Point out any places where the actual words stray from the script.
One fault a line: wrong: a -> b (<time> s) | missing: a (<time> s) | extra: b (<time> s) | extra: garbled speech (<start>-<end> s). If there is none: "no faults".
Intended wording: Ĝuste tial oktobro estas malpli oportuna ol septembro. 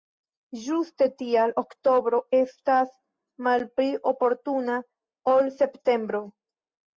no faults